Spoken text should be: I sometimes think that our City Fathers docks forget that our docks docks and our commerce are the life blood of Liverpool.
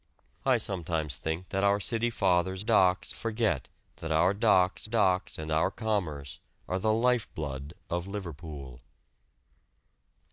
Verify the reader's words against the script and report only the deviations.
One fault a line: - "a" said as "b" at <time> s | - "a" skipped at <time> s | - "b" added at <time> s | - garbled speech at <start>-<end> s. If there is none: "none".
none